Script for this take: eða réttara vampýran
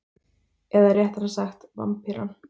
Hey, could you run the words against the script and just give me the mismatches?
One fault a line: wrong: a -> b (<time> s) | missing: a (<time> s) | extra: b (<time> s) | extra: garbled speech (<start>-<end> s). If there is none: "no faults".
extra: sagt (1.3 s)